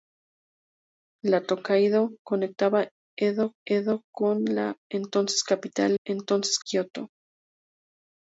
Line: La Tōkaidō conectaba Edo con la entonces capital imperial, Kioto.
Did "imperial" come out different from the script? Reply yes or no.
yes